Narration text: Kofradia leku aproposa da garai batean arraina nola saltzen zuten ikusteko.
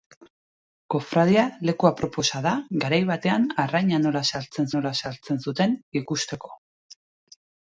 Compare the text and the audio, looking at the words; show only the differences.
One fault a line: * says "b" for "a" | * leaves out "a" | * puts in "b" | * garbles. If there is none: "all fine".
* puts in "nola saltzen"